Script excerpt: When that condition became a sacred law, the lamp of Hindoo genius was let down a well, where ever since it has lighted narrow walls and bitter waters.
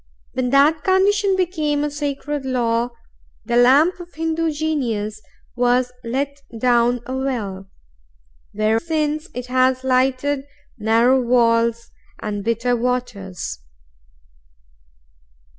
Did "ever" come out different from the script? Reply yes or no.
yes